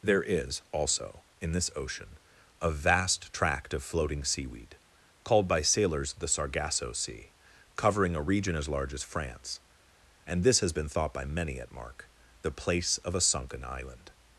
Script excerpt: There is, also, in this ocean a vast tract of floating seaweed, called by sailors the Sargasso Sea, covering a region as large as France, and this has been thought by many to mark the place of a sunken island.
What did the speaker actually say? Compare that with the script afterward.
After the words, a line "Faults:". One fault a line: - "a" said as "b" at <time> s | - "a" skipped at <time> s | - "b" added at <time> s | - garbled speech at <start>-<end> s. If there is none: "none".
There is, also, in this ocean a vast tract of floating seaweed, called by sailors the Sargasso Sea, covering a region as large as France, and this has been thought by many at mark the place of a sunken island.
Faults:
- "to" said as "at" at 11.6 s